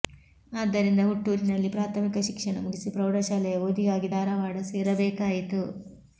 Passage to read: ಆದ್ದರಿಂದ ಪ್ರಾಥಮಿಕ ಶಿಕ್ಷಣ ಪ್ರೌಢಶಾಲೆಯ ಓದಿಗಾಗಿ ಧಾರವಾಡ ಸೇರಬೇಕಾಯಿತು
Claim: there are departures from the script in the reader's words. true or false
true